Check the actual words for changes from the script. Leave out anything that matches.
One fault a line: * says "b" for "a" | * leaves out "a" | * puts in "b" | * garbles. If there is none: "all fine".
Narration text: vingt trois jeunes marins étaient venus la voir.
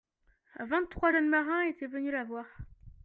all fine